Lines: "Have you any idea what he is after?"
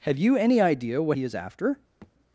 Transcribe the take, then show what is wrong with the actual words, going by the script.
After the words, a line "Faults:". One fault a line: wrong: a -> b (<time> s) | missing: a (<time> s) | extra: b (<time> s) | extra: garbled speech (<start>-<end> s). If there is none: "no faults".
"Have you any idea what he is after?"
Faults:
no faults